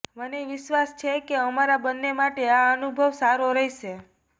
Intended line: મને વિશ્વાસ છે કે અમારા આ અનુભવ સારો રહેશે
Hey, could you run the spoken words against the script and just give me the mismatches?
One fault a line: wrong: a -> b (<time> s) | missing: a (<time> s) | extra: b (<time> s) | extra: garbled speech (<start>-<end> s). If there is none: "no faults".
extra: બંને માટે (1.8 s)